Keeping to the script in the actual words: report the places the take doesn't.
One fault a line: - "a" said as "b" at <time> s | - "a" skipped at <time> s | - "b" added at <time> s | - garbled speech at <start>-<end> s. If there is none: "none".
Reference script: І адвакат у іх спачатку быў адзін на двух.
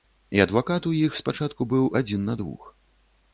none